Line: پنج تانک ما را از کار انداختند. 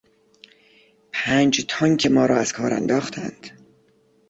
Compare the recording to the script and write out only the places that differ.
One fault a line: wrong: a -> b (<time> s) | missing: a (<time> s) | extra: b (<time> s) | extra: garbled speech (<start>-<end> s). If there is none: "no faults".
no faults